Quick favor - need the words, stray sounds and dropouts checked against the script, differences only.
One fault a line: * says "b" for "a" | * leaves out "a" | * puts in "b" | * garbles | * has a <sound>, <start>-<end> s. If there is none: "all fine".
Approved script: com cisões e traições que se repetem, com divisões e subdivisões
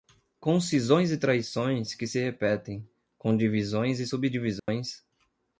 * has a dropout, 4.6-4.7 s